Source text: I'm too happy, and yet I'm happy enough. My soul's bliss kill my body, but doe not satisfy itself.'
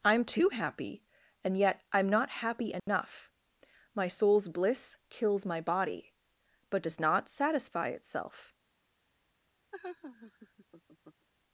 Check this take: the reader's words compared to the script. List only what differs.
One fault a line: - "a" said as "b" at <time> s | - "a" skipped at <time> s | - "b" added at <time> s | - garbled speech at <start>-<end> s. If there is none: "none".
- "not" added at 2.1 s
- "kill" said as "kills" at 5.1 s
- "doe" said as "does" at 6.8 s